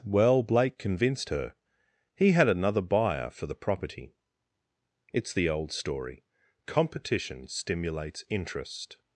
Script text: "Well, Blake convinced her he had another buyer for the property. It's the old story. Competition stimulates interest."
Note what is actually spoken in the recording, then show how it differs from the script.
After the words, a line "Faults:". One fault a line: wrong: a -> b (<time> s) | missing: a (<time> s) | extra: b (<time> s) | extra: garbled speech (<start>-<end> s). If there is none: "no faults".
"Well, Blake convinced her he had another buyer for the property. It's the old story. Competition stimulates interest."
Faults:
no faults